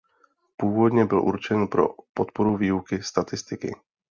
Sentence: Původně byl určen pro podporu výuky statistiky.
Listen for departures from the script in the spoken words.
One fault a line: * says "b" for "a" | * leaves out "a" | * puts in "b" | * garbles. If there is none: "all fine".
all fine